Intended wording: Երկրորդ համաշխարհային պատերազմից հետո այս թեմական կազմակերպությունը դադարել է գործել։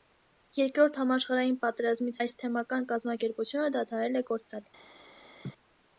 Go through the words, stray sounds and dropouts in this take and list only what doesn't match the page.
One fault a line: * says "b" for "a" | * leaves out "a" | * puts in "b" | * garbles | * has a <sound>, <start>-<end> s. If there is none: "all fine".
* leaves out "հետո"
* has a laugh, 5.4-5.5 s